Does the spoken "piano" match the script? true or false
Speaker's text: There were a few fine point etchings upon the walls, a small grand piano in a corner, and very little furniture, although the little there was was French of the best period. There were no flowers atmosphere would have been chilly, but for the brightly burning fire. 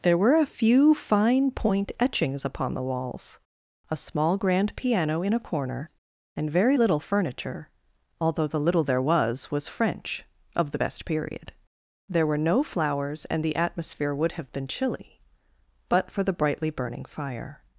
true